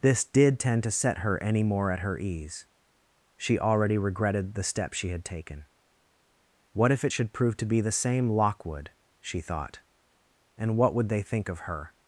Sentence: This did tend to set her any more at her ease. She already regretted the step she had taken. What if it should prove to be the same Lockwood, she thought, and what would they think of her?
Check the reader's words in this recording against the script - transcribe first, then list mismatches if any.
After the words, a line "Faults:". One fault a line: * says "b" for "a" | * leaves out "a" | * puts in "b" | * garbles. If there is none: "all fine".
This did tend to set her any more at her ease. She already regretted the step she had taken. What if it should prove to be the same Lockwood, she thought, and what would they think of her?
Faults:
all fine